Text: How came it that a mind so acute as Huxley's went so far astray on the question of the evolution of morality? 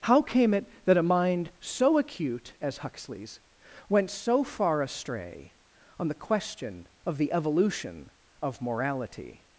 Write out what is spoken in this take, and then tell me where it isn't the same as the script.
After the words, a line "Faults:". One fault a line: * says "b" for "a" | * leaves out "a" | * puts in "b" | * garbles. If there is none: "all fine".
How came it that a mind so acute as Huxley's went so far astray on the question of the evolution of morality?
Faults:
all fine